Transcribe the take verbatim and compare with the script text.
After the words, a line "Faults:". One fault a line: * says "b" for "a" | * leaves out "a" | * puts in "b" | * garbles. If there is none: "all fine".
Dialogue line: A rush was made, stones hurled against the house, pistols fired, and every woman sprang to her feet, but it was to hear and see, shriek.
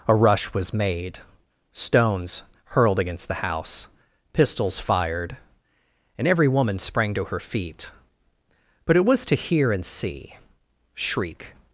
A rush was made, stones hurled against the house, pistols fired, and every woman sprang to her feet, but it was to hear and see, shriek.
Faults:
all fine